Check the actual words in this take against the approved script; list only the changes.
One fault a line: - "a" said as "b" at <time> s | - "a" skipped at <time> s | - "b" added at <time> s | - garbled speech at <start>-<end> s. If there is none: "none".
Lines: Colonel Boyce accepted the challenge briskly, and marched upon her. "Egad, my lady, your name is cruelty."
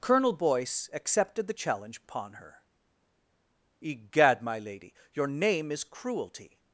- "briskly and marched" skipped at 2.0 s